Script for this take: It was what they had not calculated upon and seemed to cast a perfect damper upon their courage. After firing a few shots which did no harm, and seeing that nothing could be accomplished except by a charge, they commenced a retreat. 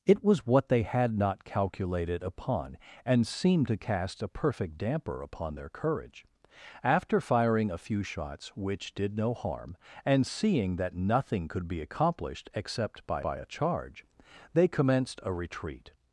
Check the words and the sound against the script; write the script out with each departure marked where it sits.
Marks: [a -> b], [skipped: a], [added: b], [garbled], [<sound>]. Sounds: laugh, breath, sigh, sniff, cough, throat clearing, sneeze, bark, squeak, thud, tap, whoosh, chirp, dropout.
It was what they had not calculated upon and seemed to cast a perfect damper upon their courage. After firing a few shots which did no harm, and seeing that nothing could be accomplished except by [added: by] a charge, they commenced a retreat.